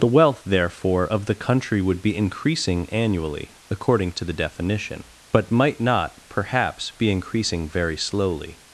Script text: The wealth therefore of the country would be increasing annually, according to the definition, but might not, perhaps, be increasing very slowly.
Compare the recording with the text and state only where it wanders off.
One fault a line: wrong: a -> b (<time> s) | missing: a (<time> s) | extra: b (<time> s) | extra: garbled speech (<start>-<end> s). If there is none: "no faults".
no faults